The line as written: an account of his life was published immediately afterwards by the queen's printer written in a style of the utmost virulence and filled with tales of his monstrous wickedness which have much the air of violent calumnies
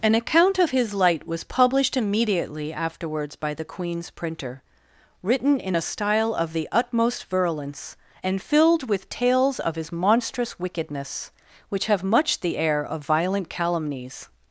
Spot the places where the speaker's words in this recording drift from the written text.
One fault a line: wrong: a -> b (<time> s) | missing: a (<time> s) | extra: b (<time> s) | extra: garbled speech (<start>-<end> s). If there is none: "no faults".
wrong: life -> light (0.9 s)